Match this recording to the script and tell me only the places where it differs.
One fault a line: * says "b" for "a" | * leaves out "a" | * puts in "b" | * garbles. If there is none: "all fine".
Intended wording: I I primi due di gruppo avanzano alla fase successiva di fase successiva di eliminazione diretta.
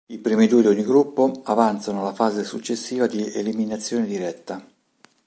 * leaves out "I"
* puts in "ogni"
* leaves out "fase successiva di"